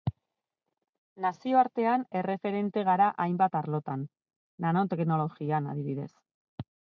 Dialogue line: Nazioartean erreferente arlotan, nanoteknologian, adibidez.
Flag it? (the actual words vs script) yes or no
yes